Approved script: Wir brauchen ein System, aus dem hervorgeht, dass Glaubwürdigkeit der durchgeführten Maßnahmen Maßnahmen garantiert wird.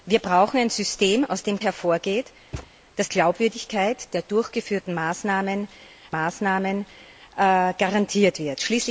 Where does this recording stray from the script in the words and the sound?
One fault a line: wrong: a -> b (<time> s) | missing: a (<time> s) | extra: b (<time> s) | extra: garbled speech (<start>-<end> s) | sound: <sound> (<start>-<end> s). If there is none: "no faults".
sound: thud (2.5-2.7 s)